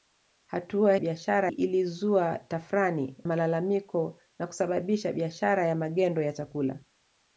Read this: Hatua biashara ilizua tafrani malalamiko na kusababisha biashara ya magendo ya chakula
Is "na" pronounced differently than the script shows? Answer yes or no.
no